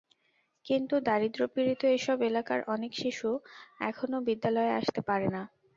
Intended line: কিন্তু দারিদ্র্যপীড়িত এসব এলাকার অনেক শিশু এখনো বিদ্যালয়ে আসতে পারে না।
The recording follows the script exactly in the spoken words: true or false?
true